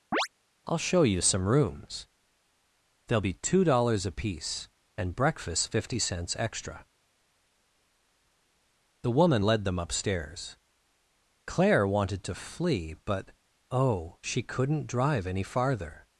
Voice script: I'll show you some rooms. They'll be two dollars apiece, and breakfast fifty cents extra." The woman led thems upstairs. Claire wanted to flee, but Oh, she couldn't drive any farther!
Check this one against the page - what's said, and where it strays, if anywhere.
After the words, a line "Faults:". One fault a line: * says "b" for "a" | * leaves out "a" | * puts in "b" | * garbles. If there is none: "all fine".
I'll show you some rooms. They'll be two dollars apiece, and breakfast fifty cents extra." The woman led them upstairs. Claire wanted to flee, but Oh, she couldn't drive any farther!
Faults:
* says "them" for "thems"